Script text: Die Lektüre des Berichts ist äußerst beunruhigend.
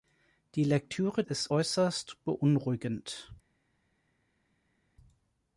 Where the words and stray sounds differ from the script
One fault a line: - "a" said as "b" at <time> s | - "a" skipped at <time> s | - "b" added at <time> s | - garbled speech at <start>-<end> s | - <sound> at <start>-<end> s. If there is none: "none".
- "des Berichts" skipped at 1.2 s